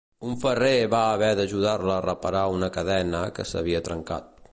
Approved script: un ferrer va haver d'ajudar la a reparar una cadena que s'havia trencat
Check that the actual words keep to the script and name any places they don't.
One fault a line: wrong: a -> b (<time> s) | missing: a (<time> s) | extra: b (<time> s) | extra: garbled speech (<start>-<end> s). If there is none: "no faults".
no faults